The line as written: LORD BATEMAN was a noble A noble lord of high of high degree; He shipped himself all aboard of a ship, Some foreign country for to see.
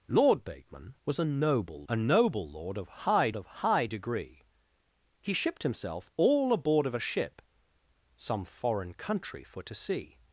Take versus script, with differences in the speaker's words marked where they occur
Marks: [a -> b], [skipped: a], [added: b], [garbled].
LORD BATEMAN was a noble A noble lord of high of high degree; He shipped himself all aboard of a ship, Some foreign country for to see.